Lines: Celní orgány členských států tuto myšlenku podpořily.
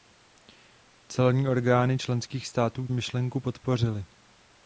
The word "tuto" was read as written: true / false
false